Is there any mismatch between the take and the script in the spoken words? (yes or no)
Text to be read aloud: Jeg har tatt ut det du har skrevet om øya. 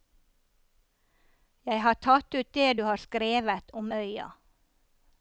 no